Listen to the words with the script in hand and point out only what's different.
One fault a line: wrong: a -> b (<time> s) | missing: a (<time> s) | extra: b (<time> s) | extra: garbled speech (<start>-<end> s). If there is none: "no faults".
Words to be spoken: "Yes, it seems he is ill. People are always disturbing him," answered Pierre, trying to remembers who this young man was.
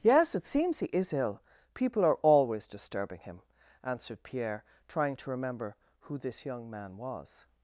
wrong: remembers -> remember (5.3 s)